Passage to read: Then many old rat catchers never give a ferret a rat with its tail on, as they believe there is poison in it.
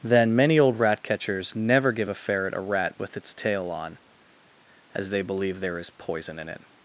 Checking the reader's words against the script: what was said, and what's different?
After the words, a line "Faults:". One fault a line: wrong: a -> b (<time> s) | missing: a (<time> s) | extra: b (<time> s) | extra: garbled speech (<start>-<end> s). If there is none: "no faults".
Then many old rat catchers never give a ferret a rat with its tail on, as they believe there is poison in it.
Faults:
no faults